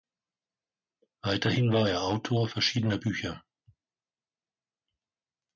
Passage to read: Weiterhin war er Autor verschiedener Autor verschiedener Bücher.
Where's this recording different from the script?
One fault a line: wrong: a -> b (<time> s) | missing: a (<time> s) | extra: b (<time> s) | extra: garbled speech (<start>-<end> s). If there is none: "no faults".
missing: Autor verschiedener (3.0 s)